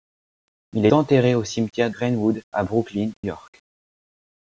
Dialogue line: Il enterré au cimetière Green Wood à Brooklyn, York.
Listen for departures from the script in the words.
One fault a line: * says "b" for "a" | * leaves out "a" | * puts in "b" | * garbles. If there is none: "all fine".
all fine